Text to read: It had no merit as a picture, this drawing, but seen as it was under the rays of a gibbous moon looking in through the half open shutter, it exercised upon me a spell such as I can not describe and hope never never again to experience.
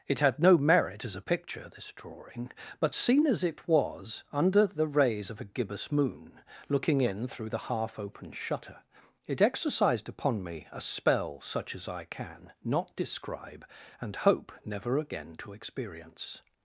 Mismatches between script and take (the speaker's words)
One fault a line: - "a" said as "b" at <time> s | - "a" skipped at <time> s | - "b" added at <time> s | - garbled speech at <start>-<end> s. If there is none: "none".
- "never" skipped at 15.0 s